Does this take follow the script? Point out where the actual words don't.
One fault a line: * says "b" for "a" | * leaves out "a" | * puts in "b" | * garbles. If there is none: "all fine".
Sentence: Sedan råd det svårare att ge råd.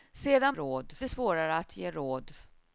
all fine